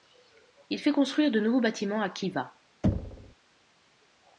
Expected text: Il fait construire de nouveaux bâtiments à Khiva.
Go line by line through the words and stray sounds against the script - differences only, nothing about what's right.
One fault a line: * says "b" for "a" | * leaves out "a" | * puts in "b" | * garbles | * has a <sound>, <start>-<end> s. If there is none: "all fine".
* has a thud, 2.8-3.4 s